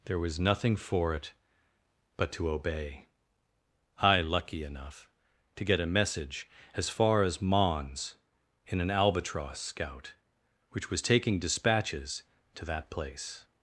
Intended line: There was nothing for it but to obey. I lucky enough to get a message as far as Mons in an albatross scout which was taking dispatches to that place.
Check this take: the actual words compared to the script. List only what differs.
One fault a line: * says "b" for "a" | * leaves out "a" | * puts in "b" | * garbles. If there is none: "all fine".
all fine